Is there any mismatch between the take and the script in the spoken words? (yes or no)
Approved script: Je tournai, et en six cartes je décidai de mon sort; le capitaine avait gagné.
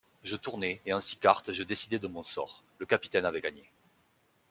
no